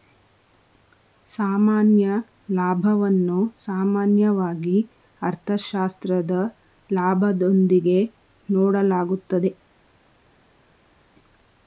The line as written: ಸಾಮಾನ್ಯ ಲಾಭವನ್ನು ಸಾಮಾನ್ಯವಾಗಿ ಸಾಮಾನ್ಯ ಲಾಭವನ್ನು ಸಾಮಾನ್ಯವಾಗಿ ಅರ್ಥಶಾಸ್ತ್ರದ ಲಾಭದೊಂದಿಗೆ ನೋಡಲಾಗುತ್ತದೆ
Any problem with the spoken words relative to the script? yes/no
yes